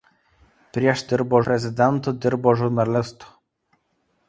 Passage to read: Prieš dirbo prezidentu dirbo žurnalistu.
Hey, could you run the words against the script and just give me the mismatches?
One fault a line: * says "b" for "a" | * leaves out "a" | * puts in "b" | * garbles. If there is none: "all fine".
all fine